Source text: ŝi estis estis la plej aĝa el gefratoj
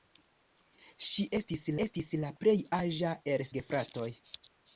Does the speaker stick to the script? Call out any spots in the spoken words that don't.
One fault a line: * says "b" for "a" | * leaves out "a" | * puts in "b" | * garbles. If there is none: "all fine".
all fine